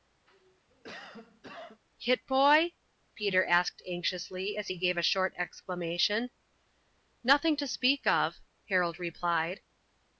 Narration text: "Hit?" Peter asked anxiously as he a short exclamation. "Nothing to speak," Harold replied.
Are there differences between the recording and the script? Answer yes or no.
yes